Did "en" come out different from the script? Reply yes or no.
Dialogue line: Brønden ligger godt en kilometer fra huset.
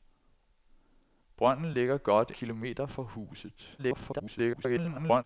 yes